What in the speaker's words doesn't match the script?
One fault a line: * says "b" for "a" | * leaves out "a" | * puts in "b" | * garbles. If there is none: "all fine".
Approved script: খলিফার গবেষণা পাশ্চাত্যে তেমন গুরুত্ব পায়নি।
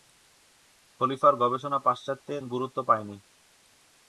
* leaves out "তেমন"